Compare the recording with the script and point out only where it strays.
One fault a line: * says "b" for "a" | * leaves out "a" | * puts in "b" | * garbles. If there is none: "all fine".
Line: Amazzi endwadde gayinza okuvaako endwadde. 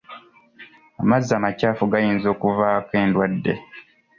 * says "amakyafu" for "endwadde"